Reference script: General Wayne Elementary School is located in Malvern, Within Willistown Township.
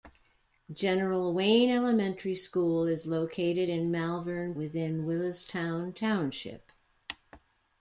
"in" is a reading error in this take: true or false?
false